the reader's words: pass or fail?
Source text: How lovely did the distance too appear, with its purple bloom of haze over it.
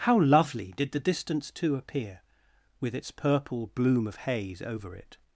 pass